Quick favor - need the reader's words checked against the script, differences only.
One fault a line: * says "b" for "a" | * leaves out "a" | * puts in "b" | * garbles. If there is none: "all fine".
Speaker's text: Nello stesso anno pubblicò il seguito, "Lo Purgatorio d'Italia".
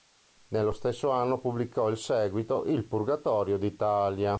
* says "Il" for "Lo"